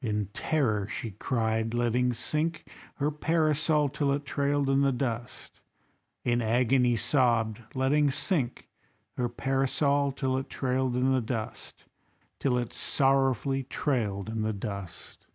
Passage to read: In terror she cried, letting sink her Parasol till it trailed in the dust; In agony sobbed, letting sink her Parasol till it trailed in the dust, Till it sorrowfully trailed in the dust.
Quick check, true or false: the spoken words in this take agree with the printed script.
true